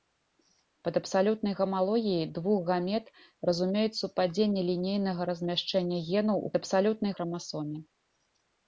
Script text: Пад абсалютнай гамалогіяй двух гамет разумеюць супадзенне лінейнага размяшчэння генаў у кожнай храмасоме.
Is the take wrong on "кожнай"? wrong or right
wrong